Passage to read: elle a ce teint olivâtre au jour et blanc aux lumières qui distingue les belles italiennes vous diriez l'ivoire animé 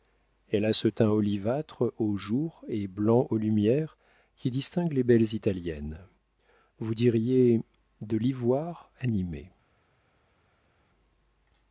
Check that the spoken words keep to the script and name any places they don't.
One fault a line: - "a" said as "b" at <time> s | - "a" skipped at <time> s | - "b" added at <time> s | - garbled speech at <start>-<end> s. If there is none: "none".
- "de" added at 8.0 s